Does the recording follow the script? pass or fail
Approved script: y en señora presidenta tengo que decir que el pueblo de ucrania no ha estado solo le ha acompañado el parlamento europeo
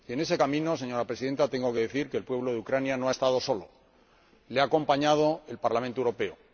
fail